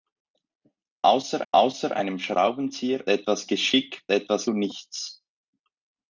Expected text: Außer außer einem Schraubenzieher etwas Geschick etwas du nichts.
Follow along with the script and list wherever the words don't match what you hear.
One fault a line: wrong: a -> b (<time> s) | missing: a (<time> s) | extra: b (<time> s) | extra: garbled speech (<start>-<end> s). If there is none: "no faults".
no faults